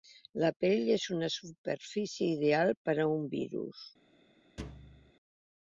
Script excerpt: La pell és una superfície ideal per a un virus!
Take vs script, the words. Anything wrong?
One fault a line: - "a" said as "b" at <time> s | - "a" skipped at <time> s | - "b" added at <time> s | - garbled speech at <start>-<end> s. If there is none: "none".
none